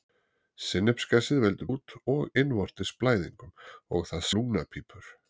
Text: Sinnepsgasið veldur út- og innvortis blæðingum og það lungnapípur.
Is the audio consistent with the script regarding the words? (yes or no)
yes